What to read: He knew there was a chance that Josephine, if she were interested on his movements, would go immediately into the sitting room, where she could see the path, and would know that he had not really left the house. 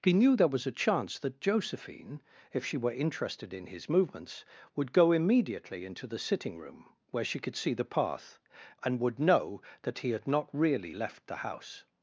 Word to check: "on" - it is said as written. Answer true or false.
false